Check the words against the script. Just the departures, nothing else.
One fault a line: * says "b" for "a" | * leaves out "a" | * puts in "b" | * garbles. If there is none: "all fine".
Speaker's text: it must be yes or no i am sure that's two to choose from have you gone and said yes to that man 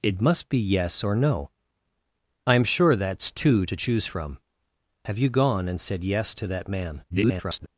* garbles